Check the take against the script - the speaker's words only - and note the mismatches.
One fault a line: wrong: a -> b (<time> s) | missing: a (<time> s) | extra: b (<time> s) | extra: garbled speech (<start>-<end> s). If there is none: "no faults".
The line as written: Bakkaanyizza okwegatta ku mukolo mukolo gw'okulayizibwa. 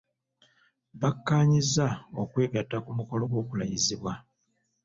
missing: mukolo (3.2 s)